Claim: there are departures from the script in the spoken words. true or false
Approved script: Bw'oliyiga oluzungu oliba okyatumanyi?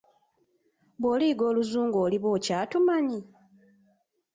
false